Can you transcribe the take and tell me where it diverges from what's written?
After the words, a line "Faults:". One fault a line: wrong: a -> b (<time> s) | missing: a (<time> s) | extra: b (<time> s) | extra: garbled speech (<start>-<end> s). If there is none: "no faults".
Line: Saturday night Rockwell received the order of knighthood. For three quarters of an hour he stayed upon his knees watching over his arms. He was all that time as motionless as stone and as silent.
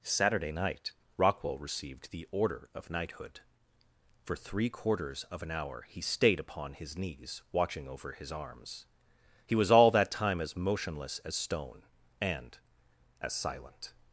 Saturday night Rockwell received the order of knighthood. For three quarters of an hour he stayed upon his knees watching over his arms. He was all that time as motionless as stone and as silent.
Faults:
no faults